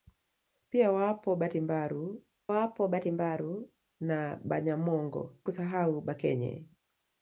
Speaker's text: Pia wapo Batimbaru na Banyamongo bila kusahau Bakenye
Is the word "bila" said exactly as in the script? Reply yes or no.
no